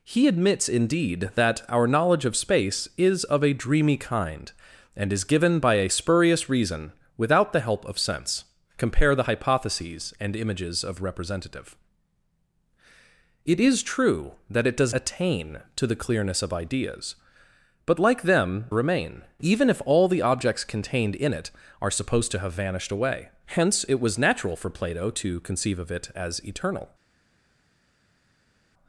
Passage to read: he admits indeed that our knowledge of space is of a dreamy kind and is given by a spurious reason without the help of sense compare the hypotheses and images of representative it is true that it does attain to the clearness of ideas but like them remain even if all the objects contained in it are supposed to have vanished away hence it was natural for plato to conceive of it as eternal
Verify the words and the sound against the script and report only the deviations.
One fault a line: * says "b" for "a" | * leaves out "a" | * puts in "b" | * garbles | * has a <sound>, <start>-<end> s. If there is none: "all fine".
all fine